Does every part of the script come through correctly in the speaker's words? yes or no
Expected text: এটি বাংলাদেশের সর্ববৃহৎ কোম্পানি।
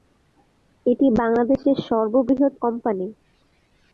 yes